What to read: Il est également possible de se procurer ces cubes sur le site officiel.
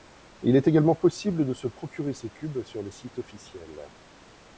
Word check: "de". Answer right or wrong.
right